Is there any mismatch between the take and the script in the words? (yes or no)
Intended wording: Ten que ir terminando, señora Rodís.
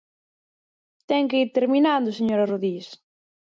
no